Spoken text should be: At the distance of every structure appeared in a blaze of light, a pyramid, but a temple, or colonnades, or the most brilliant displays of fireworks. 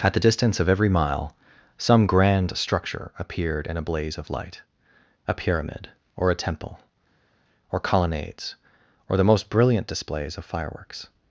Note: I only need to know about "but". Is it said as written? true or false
false